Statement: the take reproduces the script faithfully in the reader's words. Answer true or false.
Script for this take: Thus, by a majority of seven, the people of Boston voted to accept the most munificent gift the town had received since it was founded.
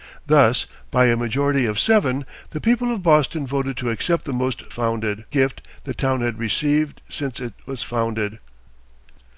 false